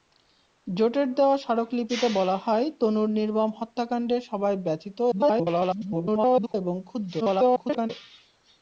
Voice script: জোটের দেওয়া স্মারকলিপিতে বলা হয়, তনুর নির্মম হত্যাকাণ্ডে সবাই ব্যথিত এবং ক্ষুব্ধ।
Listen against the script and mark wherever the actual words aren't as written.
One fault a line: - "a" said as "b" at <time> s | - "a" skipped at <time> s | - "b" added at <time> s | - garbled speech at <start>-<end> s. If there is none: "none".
- garbled speech at 5.1-6.5 s
- garbled speech at 7.2-7.9 s